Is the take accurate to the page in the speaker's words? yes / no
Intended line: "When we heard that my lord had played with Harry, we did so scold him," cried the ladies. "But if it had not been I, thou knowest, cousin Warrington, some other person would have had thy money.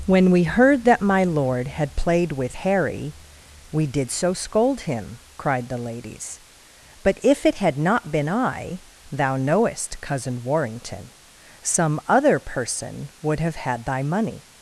yes